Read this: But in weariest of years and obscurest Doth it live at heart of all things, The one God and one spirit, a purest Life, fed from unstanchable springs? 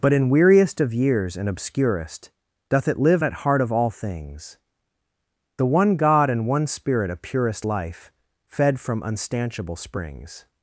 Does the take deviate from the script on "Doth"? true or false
false